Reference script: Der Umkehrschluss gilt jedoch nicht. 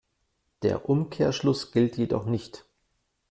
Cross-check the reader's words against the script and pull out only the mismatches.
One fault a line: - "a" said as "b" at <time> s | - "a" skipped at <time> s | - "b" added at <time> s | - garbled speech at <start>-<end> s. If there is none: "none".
none